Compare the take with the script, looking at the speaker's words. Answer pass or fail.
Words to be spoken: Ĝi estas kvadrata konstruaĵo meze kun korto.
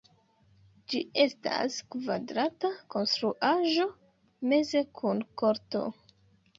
pass